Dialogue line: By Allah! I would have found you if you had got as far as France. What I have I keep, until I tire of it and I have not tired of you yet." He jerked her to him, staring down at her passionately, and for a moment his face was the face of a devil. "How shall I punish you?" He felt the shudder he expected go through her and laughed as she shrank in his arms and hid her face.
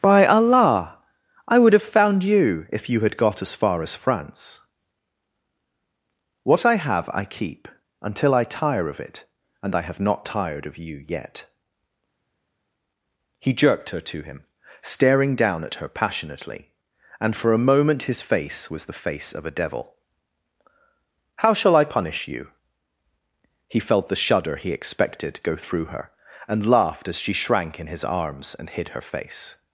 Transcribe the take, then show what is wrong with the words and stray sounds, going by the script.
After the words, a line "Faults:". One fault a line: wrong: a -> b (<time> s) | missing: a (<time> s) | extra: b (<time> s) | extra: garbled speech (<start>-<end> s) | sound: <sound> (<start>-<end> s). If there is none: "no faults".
By Allah! I would have found you if you had got as far as France. What I have I keep, until I tire of it and I have not tired of you yet." He jerked her to him, staring down at her passionately, and for a moment his face was the face of a devil. "How shall I punish you?" He felt the shudder he expected go through her and laughed as she shrank in his arms and hid her face.
Faults:
no faults